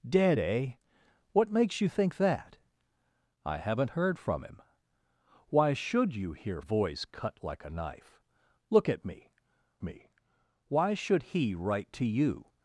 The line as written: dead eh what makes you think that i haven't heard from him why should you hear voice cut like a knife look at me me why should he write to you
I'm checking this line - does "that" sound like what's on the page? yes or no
yes